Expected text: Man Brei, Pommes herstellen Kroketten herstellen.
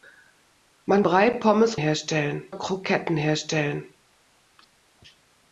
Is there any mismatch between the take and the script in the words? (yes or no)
no